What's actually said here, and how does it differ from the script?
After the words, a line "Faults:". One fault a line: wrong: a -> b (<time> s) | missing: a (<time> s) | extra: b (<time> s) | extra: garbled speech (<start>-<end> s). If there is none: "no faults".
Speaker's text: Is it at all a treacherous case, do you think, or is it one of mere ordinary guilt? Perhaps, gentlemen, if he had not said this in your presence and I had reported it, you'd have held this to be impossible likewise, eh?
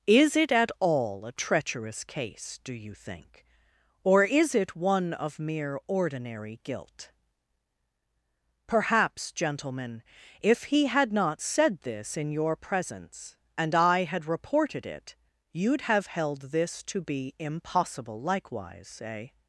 Is it at all a treacherous case, do you think, or is it one of mere ordinary guilt? Perhaps, gentlemen, if he had not said this in your presence and I had reported it, you'd have held this to be impossible likewise, eh?
Faults:
no faults